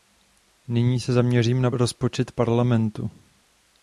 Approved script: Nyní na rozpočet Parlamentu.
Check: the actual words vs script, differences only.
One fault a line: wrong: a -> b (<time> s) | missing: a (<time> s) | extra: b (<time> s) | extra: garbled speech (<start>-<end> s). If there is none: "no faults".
extra: se zaměřím (1.0 s)